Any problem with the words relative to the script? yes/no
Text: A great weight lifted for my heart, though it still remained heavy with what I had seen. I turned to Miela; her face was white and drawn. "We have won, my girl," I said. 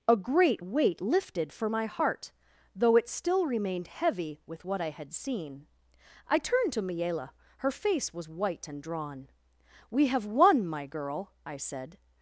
no